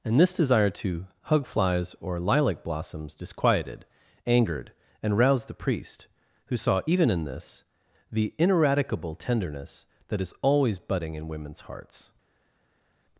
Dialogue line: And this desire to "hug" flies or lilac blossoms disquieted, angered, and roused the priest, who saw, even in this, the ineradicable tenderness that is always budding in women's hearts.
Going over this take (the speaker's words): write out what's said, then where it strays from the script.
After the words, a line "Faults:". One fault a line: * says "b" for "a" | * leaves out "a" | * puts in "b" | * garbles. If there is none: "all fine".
And this desire to "hug" flies or lilac blossoms disquieted, angered, and roused the priest, who saw, even in this, the ineradicable tenderness that is always budding in women's hearts.
Faults:
all fine